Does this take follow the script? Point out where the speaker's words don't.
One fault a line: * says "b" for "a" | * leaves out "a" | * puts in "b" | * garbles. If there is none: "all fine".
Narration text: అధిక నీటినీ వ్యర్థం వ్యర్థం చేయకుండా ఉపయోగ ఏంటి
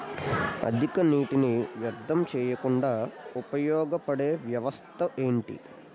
* leaves out "వ్యర్థం"
* puts in "పడే వ్యవస్థ"